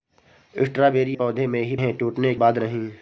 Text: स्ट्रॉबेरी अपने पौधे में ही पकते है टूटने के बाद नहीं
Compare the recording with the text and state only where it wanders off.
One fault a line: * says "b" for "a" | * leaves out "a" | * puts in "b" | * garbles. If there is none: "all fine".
* leaves out "अपने"
* leaves out "पकते"
* leaves out "के"